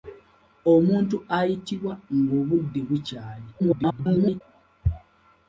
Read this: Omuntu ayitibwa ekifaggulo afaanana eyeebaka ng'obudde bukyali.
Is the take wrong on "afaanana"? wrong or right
wrong